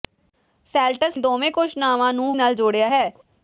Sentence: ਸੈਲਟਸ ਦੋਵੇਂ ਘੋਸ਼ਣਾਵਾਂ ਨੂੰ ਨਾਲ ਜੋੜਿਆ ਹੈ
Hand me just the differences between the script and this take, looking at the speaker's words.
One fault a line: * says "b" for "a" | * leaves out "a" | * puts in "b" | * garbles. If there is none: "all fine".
all fine